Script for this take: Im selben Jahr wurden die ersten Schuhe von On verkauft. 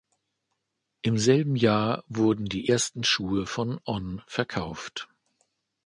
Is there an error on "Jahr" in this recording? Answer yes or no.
no